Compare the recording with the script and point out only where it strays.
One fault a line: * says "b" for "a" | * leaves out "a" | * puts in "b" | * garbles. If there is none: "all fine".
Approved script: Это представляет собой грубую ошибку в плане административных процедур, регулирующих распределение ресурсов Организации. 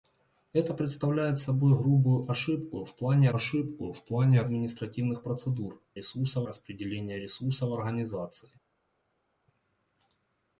* puts in "ошибку в плане"
* says "ресурсов" for "регулирующих"